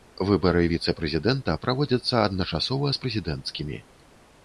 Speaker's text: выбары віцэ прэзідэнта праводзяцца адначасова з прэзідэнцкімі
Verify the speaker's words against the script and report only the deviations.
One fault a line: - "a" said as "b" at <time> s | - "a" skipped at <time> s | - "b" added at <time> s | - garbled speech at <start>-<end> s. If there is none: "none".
none